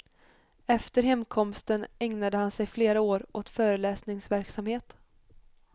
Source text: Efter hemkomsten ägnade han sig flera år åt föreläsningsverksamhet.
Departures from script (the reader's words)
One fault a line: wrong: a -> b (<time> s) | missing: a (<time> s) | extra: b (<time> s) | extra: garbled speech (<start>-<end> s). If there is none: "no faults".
no faults